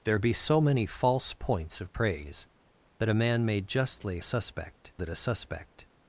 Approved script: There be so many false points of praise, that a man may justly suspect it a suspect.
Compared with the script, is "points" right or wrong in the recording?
right